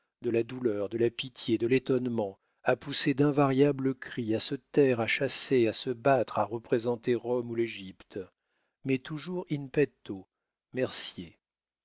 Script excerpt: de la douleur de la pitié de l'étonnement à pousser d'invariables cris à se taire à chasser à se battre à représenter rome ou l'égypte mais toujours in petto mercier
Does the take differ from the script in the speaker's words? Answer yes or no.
no